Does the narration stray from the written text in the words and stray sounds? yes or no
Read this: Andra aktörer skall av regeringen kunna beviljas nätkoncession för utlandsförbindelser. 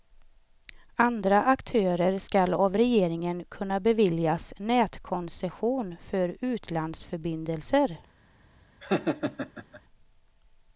yes